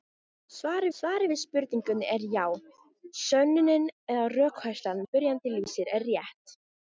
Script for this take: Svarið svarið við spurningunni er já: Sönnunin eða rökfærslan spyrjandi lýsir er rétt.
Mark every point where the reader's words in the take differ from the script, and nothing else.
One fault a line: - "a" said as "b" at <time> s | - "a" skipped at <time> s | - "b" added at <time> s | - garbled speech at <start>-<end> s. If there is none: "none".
none